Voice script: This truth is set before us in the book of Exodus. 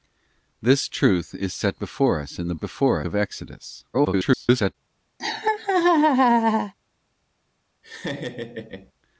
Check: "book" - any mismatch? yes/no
yes